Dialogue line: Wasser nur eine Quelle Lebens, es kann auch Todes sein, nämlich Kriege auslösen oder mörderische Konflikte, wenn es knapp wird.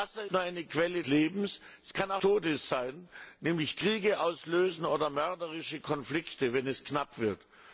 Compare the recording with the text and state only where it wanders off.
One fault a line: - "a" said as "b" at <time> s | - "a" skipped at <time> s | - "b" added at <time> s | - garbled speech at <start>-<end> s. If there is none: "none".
none